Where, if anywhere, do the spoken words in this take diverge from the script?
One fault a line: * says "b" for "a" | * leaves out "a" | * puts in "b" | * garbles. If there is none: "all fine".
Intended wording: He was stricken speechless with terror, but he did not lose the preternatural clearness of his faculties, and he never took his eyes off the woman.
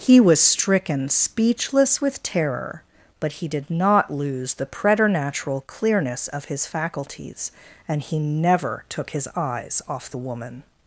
all fine